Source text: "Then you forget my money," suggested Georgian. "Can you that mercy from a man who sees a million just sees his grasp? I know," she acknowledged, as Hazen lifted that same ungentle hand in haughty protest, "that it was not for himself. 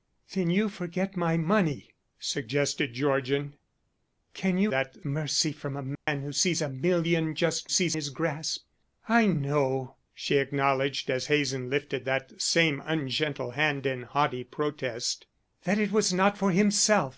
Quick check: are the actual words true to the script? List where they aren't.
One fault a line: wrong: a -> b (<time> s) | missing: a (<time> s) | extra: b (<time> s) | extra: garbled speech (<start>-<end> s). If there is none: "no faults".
no faults